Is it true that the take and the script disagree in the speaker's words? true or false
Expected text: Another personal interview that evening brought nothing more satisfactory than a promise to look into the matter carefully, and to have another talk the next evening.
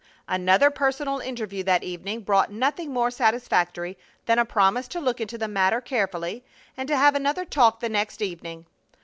false